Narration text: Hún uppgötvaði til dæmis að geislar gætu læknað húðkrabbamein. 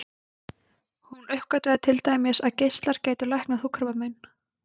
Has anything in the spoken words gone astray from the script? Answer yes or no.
no